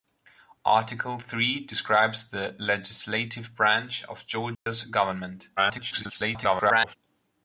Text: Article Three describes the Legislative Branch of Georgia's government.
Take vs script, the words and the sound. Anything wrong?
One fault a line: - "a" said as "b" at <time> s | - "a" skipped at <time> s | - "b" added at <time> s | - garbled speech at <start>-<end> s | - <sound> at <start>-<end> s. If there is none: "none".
- dropout at 4.5-4.7 s
- garbled speech at 5.6-7.0 s